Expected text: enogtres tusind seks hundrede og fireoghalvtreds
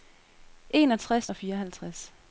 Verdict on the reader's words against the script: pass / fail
fail